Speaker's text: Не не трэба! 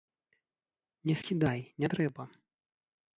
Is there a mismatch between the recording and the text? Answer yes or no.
yes